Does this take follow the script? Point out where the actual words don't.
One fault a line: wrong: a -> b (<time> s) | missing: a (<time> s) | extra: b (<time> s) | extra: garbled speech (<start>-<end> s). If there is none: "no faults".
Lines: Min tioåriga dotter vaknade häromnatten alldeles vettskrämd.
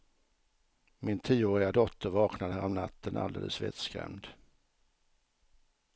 no faults